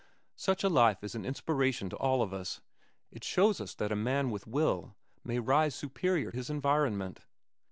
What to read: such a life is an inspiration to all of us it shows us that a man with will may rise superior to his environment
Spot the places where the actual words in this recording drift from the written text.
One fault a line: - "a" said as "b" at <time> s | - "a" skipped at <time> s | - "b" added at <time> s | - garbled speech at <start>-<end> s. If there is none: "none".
- "to" skipped at 6.3 s